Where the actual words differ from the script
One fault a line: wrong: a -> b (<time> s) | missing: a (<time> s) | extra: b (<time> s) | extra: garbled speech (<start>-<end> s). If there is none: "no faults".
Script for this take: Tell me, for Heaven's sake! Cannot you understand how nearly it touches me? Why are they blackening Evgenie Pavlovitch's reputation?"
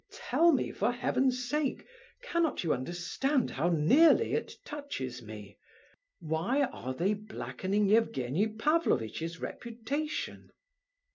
no faults